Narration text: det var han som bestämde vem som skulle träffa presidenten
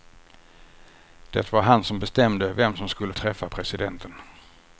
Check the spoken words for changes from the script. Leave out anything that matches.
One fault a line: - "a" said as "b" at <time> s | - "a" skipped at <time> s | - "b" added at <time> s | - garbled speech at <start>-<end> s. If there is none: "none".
none